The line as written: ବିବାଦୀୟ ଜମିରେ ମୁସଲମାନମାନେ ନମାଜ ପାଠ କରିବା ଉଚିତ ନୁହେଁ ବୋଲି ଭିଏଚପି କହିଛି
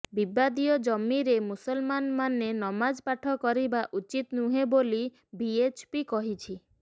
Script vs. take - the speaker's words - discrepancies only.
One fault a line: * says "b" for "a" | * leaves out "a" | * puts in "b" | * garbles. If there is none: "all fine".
all fine